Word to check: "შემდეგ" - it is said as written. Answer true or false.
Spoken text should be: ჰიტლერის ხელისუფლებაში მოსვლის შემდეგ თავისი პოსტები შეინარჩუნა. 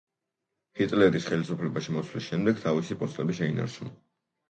true